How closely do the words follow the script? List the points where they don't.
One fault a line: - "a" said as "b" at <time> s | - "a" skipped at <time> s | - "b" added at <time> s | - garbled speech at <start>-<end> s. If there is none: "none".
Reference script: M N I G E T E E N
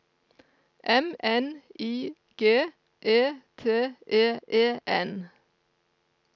none